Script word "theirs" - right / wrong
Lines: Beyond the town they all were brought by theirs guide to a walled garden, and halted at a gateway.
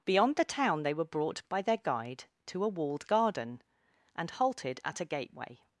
wrong